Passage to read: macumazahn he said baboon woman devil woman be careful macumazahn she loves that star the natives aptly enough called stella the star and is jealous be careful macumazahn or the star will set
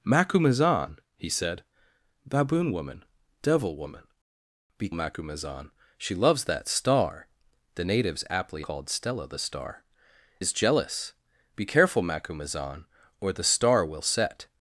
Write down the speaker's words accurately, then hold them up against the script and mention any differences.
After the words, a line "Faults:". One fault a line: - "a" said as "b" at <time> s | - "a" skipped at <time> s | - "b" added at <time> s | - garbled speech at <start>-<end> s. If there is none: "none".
macumazahn he said baboon woman devil woman be macumazahn she loves that star the natives aptly called stella the star is jealous be careful macumazahn or the star will set
Faults:
- "careful" skipped at 4.9 s
- "enough" skipped at 8.6 s
- "and" skipped at 9.8 s